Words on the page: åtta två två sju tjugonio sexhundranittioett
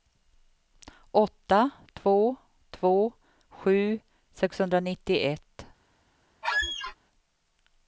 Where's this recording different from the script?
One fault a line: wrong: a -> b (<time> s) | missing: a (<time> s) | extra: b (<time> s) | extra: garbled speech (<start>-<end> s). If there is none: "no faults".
missing: tjugonio (4.0 s)